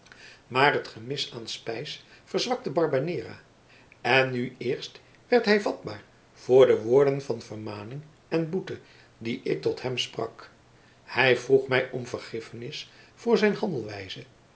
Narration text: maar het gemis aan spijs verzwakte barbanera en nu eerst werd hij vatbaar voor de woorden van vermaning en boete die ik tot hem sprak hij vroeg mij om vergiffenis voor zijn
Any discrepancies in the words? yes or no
no